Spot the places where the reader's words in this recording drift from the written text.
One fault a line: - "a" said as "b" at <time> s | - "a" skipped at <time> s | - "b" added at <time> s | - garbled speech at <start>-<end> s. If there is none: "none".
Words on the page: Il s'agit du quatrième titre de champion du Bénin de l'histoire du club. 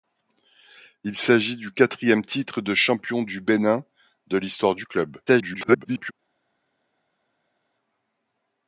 - garbled speech at 5.3-6.1 s